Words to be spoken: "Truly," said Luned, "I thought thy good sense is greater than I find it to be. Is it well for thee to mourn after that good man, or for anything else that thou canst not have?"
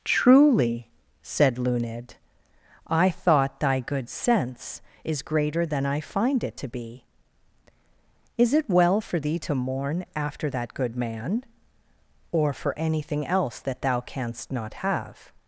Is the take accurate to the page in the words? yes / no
yes